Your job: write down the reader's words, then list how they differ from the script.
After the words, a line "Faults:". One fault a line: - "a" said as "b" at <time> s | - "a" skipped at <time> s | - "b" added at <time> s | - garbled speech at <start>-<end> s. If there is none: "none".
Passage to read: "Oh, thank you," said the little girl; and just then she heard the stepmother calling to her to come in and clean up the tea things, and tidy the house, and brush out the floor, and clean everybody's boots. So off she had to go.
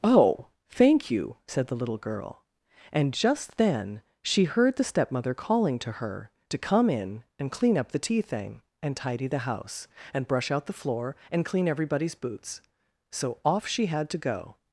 "Oh, thank you," said the little girl; and just then she heard the stepmother calling to her to come in and clean up the tea thing, and tidy the house, and brush out the floor, and clean everybody's boots. So off she had to go.
Faults:
- "things" said as "thing" at 8.2 s